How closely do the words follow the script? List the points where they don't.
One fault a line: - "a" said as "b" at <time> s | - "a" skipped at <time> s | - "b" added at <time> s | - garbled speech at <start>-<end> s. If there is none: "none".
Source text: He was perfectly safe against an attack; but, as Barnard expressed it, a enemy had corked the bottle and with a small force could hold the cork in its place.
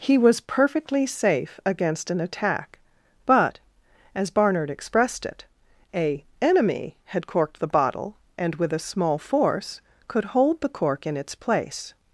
none